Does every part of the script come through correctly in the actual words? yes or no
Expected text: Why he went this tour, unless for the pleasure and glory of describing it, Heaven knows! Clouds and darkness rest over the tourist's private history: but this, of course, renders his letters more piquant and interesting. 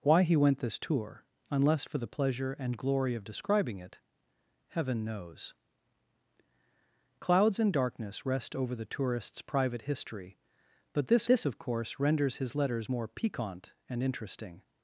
no